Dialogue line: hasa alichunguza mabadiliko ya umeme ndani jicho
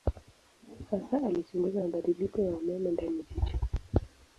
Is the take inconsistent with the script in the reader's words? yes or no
no